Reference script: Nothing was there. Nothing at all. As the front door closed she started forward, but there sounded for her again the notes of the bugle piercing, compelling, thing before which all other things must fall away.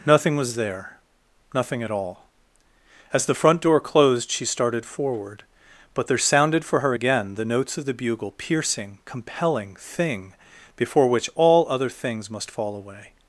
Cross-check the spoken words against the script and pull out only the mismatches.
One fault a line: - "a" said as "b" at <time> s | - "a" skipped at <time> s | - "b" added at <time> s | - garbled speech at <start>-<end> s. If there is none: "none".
none